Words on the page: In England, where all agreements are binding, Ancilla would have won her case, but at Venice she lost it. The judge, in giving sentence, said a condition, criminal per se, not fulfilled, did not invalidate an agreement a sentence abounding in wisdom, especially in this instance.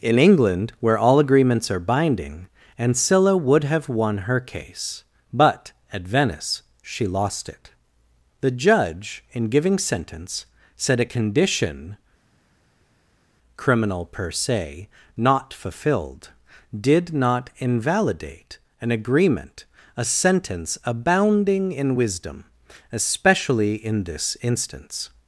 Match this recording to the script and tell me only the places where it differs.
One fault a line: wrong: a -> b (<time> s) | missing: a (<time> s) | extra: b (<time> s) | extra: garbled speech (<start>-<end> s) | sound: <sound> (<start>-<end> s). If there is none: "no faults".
no faults